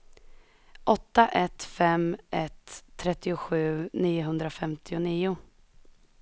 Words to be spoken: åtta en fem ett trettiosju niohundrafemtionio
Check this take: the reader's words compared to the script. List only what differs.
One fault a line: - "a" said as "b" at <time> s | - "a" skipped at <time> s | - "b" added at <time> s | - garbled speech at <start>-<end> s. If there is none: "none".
- "en" said as "ett" at 1.3 s